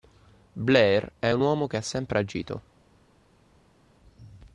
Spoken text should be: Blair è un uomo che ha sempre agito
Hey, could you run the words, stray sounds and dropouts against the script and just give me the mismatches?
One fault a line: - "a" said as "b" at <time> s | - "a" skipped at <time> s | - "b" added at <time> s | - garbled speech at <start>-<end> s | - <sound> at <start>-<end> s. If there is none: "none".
none